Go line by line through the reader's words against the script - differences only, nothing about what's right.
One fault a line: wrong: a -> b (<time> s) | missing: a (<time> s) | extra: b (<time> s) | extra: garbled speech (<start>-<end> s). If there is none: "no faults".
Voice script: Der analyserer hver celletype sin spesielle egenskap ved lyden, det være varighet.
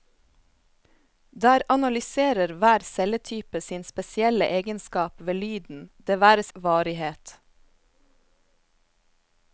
no faults